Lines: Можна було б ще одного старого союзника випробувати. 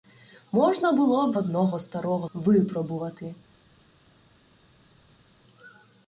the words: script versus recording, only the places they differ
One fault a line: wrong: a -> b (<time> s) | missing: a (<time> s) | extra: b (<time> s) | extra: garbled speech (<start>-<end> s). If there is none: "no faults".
missing: ще (1.4 s)
missing: союзника (2.3 s)